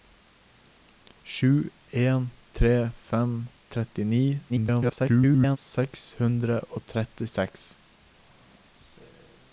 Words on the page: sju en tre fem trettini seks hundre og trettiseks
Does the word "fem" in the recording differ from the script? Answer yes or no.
no